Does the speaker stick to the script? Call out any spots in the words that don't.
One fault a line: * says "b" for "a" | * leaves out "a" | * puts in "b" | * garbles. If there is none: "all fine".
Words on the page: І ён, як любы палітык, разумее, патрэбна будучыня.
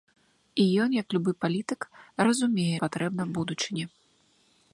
all fine